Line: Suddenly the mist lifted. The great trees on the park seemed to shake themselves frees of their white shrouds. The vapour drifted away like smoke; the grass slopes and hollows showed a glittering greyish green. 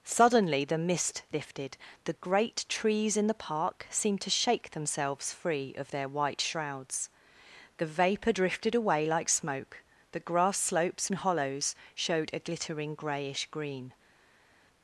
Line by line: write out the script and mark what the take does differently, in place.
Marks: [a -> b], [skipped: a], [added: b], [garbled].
Suddenly the mist lifted. The great trees [on -> in] the park seemed to shake themselves [frees -> free] of their white shrouds. The vapour drifted away like smoke; the grass slopes and hollows showed a glittering greyish green.